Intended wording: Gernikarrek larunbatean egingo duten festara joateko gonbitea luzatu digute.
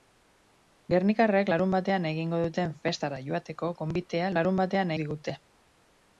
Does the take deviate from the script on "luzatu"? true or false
true